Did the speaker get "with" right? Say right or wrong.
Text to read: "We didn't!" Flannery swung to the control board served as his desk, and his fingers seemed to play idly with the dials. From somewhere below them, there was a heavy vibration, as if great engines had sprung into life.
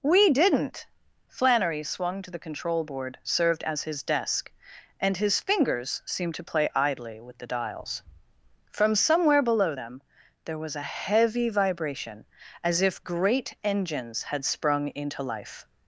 right